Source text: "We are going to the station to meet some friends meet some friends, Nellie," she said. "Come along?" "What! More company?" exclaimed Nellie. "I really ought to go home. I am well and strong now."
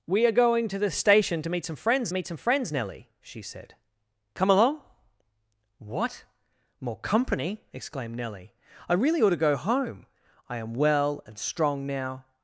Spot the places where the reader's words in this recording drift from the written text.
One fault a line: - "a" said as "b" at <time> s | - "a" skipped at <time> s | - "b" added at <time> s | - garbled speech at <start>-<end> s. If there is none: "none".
none